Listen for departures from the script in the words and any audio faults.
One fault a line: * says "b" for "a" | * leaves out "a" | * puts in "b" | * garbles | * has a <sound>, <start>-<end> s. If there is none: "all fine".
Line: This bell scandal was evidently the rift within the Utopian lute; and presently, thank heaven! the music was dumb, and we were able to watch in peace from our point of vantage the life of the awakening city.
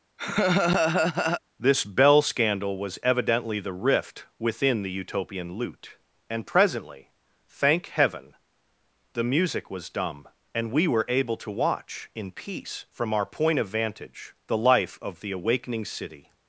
* has a laugh, 0.2-1.4 s